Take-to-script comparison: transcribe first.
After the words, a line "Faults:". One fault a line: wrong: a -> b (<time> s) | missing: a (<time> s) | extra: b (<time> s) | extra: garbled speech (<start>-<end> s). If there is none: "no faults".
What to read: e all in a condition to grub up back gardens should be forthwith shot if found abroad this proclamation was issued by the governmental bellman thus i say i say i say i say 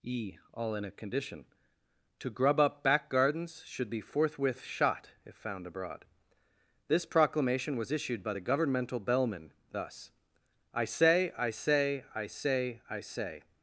e all in a condition to grub up back gardens should be forthwith shot if found abroad this proclamation was issued by the governmental bellman thus i say i say i say i say
Faults:
no faults